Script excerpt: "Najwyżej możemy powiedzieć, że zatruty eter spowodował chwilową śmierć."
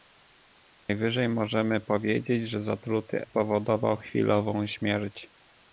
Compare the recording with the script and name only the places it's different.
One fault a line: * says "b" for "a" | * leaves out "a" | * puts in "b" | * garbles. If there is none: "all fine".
* leaves out "eter"